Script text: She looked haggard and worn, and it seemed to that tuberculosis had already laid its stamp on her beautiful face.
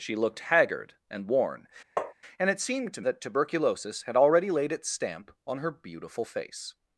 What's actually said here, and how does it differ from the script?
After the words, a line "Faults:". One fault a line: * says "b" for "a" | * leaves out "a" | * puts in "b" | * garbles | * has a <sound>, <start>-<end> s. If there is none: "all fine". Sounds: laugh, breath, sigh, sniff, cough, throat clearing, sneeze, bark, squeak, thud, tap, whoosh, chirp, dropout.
She looked haggard and worn, and it seemed to that tuberculosis had already laid its stamp on her beautiful face.
Faults:
* has a tap, 2.0-2.1 s